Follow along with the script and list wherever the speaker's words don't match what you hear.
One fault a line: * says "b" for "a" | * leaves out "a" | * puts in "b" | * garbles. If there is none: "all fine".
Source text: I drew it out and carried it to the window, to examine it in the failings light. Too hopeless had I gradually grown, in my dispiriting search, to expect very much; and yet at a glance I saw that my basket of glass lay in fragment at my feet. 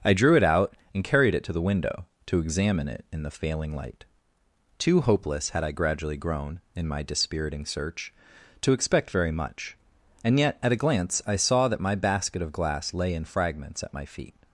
* says "failing" for "failings"
* says "fragments" for "fragment"